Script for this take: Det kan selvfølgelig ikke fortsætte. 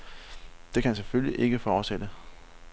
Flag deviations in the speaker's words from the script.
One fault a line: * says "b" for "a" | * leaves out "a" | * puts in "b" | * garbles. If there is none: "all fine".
all fine